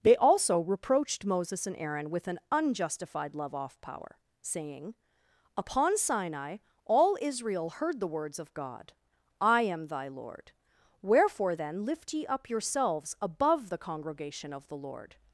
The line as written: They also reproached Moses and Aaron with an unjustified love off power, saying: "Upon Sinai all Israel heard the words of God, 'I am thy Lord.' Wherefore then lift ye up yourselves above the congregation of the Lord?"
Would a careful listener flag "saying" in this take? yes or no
no